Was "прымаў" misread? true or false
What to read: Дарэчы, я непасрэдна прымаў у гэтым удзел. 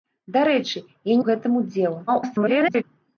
true